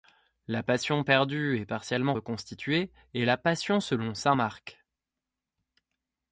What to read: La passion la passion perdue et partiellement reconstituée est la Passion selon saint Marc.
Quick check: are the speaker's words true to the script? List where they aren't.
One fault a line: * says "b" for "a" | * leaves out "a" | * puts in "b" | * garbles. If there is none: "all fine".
* leaves out "la passion"